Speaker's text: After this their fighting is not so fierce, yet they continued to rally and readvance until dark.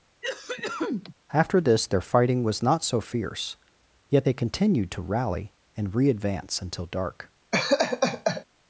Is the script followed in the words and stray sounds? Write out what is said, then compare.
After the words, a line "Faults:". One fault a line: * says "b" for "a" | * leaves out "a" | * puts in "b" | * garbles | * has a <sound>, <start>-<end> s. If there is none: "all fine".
After this their fighting was not so fierce, yet they continued to rally and readvance until dark.
Faults:
* has a cough, 0.2-1.1 s
* says "was" for "is"
* has a laugh, 7.5-8.4 s